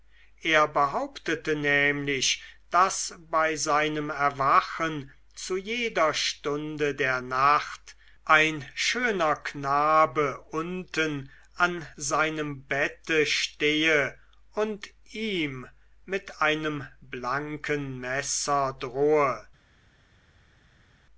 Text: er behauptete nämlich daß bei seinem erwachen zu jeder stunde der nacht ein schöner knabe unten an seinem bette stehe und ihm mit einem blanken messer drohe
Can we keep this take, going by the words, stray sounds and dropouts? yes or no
yes